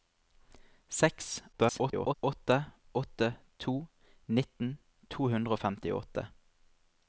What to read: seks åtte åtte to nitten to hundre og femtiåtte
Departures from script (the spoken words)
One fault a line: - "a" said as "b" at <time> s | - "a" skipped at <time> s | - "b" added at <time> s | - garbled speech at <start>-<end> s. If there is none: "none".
- garbled speech at 1.5-2.1 s